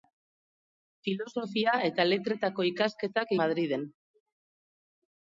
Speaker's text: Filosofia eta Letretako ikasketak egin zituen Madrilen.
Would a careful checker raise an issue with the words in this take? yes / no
yes